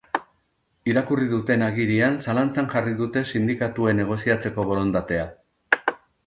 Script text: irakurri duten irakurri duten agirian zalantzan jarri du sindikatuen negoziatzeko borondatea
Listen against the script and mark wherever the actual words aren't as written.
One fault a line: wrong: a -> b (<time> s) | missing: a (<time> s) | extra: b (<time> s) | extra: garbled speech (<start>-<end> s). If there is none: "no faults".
missing: irakurri duten (1.6 s)
wrong: du -> dute (3.0 s)